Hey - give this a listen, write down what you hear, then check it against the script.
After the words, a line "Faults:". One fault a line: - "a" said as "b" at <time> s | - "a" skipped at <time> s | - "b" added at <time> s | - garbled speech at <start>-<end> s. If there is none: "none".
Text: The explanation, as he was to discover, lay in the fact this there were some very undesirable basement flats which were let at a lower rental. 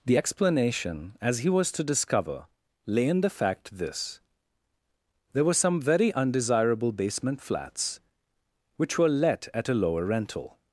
The explanation, as he was to discover, lay in the fact this there were some very undesirable basement flats which were let at a lower rental.
Faults:
none